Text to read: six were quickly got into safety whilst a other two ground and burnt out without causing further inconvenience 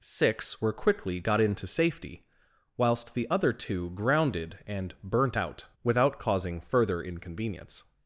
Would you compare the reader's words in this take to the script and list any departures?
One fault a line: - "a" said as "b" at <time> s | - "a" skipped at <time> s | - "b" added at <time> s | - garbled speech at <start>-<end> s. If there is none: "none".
- "a" said as "the" at 3.1 s
- "ground" said as "grounded" at 3.9 s